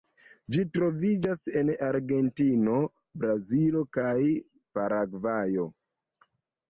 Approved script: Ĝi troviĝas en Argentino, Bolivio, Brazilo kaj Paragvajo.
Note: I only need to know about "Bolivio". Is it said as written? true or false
false